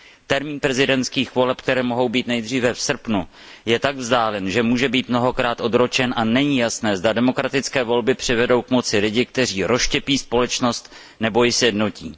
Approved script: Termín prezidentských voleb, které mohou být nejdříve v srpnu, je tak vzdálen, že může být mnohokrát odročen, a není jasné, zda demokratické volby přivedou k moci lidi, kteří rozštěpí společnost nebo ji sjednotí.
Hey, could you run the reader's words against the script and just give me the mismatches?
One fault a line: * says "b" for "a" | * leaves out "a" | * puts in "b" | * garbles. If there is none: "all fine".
all fine